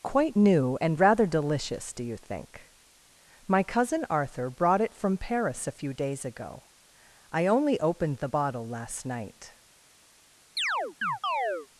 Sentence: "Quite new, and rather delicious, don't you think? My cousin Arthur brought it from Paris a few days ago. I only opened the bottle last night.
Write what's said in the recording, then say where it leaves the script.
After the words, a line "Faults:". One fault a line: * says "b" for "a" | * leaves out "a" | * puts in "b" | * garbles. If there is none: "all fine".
"Quite new, and rather delicious, do you think? My cousin Arthur brought it from Paris a few days ago. I only opened the bottle last night.
Faults:
* says "do" for "don't"